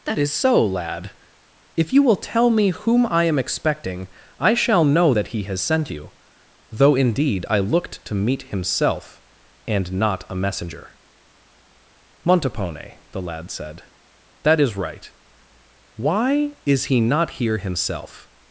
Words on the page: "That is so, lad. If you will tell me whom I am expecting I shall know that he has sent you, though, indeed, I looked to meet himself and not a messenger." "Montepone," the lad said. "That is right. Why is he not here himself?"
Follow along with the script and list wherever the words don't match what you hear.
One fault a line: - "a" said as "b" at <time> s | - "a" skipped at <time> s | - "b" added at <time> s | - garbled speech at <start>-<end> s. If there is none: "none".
none